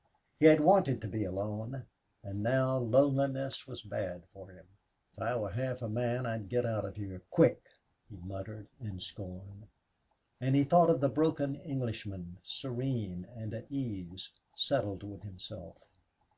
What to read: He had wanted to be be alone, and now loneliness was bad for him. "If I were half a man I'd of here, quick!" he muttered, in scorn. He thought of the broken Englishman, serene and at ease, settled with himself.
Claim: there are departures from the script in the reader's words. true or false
true